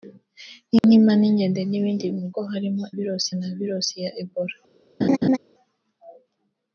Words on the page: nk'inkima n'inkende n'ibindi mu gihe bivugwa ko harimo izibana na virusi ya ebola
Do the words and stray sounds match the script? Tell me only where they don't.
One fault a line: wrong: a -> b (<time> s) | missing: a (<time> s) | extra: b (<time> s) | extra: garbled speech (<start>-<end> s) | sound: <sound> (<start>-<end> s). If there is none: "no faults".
sound: dropout (0.8-0.8 s)
missing: gihe bivugwa (2.3 s)
wrong: izibana -> virusi (2.9 s)
sound: laugh (5.0-5.4 s)